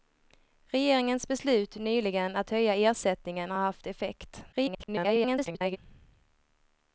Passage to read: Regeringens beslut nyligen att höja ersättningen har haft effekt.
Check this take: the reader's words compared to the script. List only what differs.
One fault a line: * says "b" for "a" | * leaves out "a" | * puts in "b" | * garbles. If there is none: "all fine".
* garbles